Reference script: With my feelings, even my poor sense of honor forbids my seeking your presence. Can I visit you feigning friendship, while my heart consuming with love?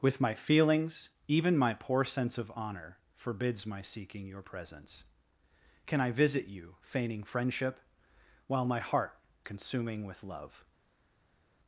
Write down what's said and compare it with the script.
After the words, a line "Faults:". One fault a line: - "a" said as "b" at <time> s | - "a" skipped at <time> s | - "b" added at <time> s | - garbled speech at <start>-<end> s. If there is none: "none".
With my feelings, even my poor sense of honor forbids my seeking your presence. Can I visit you feigning friendship, while my heart consuming with love?
Faults:
none